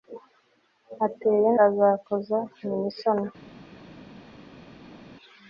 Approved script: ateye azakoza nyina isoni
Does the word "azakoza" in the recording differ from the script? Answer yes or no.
no